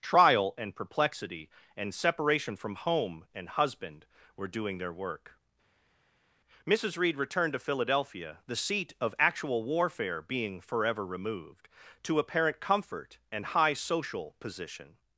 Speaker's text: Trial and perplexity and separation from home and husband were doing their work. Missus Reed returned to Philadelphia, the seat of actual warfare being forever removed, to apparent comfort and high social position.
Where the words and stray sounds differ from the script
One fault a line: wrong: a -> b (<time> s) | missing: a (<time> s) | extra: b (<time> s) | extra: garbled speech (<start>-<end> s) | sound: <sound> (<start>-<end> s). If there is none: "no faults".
no faults